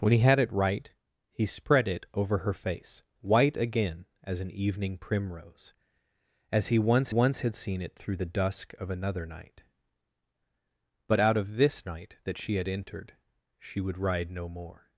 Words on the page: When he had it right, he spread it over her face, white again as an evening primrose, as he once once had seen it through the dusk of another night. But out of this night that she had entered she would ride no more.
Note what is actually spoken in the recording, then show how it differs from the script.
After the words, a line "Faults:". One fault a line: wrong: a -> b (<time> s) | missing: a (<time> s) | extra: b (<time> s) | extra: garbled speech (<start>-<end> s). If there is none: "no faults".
When he had it right, he spread it over her face, white again as an evening primrose, as he once once had seen it through the dusk of another night. But out of this night that she had entered she would ride no more.
Faults:
no faults